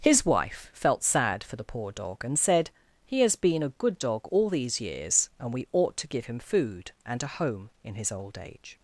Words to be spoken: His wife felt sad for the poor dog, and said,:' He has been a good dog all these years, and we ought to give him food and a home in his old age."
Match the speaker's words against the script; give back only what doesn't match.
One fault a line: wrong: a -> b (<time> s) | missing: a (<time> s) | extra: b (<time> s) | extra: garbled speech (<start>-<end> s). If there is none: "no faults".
no faults